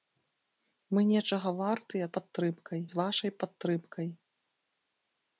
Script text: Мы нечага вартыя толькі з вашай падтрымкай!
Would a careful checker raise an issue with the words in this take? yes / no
yes